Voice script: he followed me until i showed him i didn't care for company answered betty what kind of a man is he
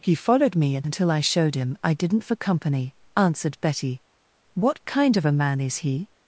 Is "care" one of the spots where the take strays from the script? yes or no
yes